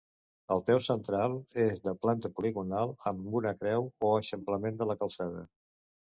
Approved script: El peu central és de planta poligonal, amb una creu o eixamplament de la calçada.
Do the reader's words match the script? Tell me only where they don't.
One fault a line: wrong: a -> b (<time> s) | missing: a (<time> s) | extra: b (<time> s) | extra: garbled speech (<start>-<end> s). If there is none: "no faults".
no faults